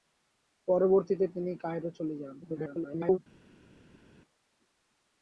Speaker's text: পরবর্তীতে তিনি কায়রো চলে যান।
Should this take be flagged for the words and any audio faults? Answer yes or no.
yes